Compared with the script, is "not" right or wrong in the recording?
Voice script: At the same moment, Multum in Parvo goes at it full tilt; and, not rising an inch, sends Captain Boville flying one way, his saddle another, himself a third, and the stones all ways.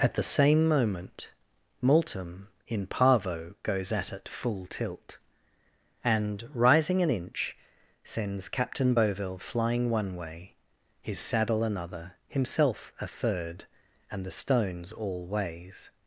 wrong